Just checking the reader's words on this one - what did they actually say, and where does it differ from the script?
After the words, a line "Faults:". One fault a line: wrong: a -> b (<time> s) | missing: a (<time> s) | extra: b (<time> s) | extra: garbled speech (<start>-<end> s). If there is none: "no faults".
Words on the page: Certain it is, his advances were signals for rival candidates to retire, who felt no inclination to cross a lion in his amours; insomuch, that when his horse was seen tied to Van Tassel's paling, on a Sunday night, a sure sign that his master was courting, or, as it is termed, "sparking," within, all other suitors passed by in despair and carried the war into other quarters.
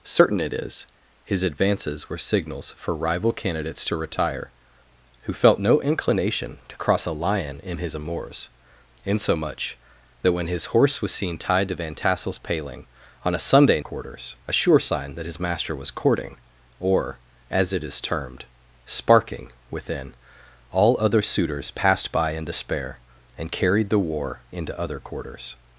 Certain it is, his advances were signals for rival candidates to retire, who felt no inclination to cross a lion in his amours; insomuch, that when his horse was seen tied to Van Tassel's paling, on a Sunday quarters, a sure sign that his master was courting, or, as it is termed, "sparking," within, all other suitors passed by in despair and carried the war into other quarters.
Faults:
wrong: night -> quarters (13.8 s)